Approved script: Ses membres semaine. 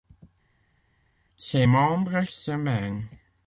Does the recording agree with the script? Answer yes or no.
yes